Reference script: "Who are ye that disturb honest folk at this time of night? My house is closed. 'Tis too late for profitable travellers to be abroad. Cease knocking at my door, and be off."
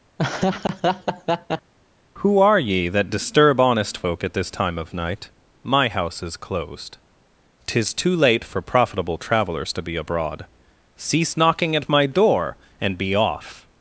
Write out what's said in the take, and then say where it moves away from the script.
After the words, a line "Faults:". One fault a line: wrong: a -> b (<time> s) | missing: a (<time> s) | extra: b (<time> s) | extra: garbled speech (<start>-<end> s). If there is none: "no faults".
"Who are ye that disturb honest folk at this time of night? My house is closed. 'Tis too late for profitable travellers to be abroad. Cease knocking at my door, and be off."
Faults:
no faults